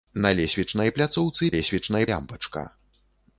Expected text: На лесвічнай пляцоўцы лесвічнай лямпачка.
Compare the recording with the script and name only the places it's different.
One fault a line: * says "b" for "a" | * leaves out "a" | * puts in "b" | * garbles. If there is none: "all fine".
all fine